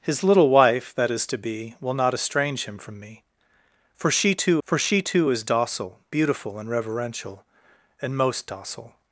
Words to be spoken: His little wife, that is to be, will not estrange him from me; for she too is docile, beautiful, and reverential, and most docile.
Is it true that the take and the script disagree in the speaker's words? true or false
true